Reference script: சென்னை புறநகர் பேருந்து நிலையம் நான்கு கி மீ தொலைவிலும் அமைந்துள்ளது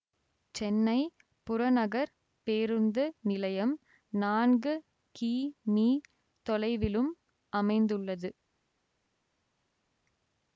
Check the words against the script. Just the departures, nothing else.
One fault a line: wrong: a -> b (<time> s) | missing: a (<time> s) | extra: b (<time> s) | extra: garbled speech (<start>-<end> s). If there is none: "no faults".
no faults